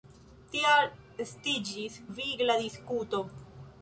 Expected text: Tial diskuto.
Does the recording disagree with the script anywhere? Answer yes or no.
yes